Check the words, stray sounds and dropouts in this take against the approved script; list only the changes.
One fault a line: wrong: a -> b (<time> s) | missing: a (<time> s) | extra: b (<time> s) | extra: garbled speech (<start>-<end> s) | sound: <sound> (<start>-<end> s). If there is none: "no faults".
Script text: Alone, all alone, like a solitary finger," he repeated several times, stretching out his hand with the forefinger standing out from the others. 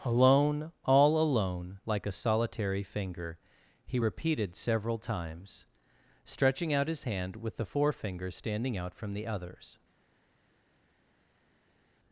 no faults